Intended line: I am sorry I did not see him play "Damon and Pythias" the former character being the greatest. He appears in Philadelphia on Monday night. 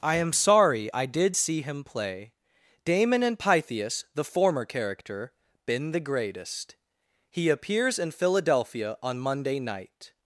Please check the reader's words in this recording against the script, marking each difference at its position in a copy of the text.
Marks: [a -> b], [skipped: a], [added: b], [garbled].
I am sorry I did [skipped: not] see him play "Damon and Pythias" the former character [being -> been] the greatest. He appears in Philadelphia on Monday night.